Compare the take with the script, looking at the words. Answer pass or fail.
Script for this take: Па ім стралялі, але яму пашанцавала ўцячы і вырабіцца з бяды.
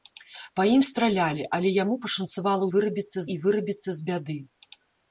fail